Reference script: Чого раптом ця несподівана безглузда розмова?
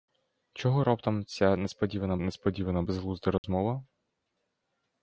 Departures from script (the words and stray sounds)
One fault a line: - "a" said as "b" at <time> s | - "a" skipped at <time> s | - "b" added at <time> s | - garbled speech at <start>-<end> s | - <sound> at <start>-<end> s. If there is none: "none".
- "несподівана" added at 2.2 s
- dropout at 3.4-3.4 s